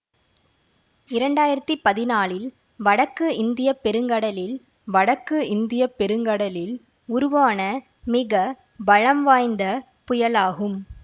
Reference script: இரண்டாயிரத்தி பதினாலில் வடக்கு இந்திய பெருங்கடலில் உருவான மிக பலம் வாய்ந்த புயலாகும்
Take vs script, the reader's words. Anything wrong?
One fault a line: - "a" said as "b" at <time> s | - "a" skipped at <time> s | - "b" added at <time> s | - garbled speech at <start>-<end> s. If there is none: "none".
- "வடக்கு இந்திய பெருங்கடலில்" added at 4.9 s